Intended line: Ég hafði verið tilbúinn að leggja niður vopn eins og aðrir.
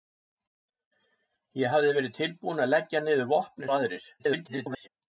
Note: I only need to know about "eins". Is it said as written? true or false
false